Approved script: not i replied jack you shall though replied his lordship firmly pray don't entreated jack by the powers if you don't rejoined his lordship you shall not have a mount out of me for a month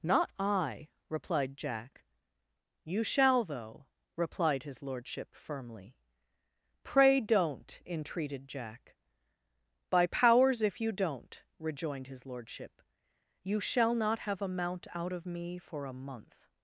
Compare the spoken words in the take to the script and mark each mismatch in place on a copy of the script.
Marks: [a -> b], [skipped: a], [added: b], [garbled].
not i replied jack you shall though replied his lordship firmly pray don't entreated jack by [skipped: the] powers if you don't rejoined his lordship you shall not have a mount out of me for a month